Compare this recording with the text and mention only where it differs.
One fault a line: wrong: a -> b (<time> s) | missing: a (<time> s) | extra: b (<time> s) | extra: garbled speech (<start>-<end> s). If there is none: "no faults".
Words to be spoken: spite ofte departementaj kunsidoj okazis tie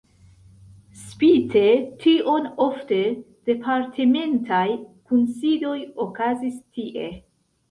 extra: tion (2.0 s)